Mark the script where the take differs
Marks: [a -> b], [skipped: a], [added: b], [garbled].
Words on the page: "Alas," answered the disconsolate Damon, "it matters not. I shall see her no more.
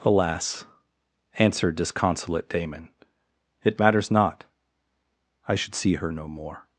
"Alas," answered [skipped: the] disconsolate Damon, "it matters not. I [shall -> should] see her no more.